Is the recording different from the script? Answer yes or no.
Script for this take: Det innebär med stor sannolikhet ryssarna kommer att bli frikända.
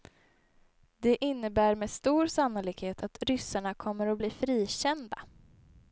yes